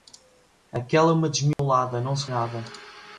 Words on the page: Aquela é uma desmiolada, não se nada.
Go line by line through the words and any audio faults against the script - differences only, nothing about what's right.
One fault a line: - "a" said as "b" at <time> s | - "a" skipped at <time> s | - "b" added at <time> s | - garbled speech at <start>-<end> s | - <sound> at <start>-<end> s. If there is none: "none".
- dropout at 1.5-1.6 s